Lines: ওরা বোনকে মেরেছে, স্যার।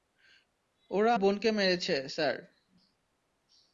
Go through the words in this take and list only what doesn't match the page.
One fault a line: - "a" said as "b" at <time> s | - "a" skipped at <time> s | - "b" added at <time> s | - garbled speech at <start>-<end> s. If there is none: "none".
none